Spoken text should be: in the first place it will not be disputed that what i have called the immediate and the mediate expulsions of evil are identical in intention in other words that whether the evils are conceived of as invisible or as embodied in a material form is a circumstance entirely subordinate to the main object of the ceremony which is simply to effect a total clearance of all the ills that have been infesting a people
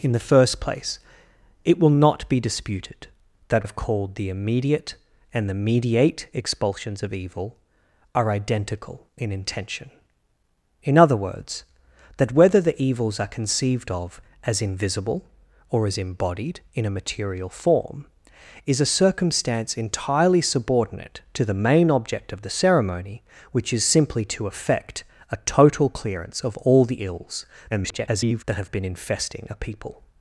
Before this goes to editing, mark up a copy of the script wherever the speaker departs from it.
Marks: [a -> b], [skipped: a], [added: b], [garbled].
in the first place it will not be disputed that [skipped: what i] have called the immediate and the mediate expulsions of evil are identical in intention in other words that whether the evils are conceived of as invisible or as embodied in a material form is a circumstance entirely subordinate to the main object of the ceremony which is simply to effect a total clearance of all the ills [garbled] that have been infesting a people